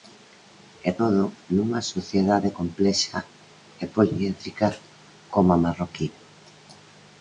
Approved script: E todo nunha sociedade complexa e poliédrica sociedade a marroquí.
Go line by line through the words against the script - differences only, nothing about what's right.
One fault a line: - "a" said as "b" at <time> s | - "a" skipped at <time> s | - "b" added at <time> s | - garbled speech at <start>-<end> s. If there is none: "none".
- "sociedade" said as "como" at 5.3 s